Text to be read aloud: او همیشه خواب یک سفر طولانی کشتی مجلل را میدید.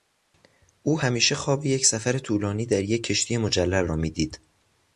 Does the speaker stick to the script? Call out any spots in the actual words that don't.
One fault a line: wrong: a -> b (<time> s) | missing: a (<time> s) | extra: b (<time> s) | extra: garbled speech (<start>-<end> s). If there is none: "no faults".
extra: در یک (2.6 s)